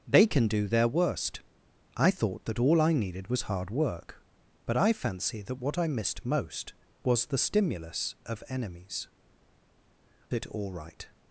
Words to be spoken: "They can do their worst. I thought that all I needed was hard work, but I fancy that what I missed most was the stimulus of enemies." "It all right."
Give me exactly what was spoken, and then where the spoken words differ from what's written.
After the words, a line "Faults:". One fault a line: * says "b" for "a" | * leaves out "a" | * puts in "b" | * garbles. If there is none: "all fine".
"They can do their worst. I thought that all I needed was hard work, but I fancy that what I missed most was the stimulus of enemies." "It all right."
Faults:
all fine